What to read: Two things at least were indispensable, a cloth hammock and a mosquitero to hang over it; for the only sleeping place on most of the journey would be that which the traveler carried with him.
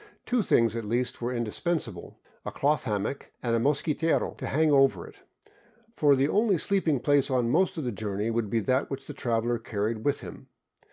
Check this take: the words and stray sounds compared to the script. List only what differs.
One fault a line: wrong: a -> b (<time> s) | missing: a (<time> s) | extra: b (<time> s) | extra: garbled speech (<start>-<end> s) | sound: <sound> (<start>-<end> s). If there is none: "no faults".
no faults